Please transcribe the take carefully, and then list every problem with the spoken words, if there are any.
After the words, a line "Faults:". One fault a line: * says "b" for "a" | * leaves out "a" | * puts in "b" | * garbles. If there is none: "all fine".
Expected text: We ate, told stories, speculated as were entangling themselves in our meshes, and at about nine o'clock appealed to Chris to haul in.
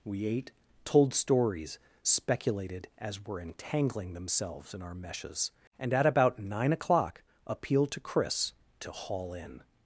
We ate, told stories, speculated as were entangling themselves in our meshes, and at about nine o'clock appealed to Chris to haul in.
Faults:
all fine